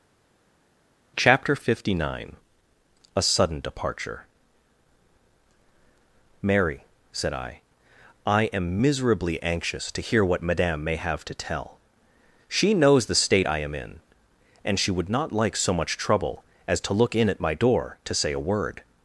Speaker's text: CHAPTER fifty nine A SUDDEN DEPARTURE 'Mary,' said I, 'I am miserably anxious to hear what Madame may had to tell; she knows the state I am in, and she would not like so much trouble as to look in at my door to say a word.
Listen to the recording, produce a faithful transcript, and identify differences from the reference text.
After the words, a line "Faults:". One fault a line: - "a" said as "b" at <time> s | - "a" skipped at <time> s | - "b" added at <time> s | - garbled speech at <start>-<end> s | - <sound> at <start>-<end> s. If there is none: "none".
CHAPTER fifty nine A SUDDEN DEPARTURE 'Mary,' said I, 'I am miserably anxious to hear what Madame may have to tell; she knows the state I am in, and she would not like so much trouble as to look in at my door to say a word.
Faults:
- "had" said as "have" at 11.0 s